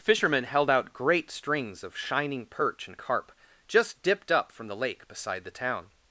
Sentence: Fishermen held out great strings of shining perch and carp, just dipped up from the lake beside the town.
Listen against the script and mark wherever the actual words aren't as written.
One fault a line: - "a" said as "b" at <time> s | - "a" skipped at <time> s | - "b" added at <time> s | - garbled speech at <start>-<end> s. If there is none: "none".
none